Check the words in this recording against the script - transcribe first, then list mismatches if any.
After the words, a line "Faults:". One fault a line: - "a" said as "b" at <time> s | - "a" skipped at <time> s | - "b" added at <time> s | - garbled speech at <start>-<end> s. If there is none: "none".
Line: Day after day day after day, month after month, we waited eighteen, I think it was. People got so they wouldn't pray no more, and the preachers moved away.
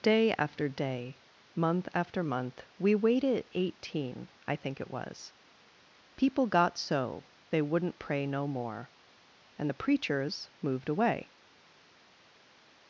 Day after day, month after month, we waited eighteen, I think it was. People got so they wouldn't pray no more, and the preachers moved away.
Faults:
- "day after day" skipped at 1.2 s